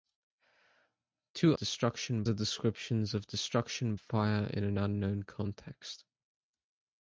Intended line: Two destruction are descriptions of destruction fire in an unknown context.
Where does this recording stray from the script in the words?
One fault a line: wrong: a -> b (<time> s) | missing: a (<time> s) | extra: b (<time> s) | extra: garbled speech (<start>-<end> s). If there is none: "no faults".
no faults